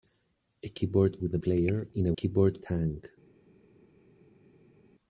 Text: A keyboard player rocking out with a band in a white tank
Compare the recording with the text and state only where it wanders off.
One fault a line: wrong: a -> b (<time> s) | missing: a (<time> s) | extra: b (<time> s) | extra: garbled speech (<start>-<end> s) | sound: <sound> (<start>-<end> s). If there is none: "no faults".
missing: player rocking out (1.2 s)
wrong: band -> player (1.4 s)
wrong: white -> keyboard (2.1 s)